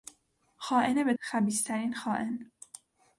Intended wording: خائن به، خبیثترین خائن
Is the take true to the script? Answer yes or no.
yes